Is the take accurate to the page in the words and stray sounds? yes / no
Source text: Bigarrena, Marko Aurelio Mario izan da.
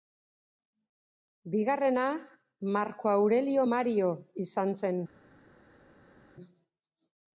no